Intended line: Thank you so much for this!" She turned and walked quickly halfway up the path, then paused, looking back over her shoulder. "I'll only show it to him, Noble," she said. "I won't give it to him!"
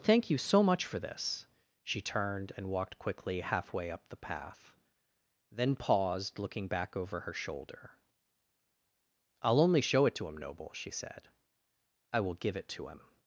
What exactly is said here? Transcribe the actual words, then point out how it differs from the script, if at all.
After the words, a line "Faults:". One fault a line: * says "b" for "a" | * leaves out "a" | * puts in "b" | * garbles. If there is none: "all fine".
Thank you so much for this!" She turned and walked quickly halfway up the path, then paused, looking back over her shoulder. "I'll only show it to him, Noble," she said. "I will give it to him!"
Faults:
* says "will" for "won't"